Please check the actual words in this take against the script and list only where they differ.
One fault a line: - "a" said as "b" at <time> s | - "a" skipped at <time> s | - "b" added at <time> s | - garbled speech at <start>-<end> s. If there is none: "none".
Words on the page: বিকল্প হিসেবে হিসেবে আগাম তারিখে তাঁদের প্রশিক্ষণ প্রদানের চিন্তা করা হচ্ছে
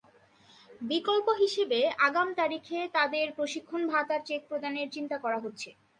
- "হিসেবে" skipped at 1.8 s
- "ভাতার চেক" added at 3.9 s